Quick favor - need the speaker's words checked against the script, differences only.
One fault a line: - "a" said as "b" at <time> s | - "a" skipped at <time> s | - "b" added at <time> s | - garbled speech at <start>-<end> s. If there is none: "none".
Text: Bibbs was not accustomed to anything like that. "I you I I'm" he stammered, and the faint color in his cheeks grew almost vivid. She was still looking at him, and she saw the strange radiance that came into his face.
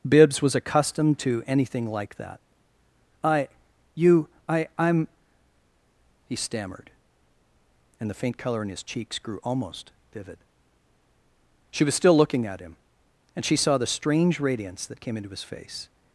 - "not" skipped at 0.6 s